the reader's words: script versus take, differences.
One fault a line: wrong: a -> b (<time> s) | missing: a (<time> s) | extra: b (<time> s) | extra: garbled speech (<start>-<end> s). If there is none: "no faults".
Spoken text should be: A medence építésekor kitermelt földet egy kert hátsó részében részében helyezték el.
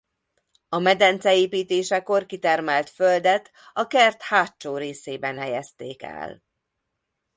wrong: egy -> a (3.7 s)
missing: részében (5.4 s)